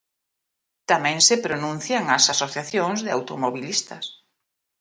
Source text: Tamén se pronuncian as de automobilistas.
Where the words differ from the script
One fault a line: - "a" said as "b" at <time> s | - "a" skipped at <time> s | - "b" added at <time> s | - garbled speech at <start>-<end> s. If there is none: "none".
- "asociacións" added at 2.3 s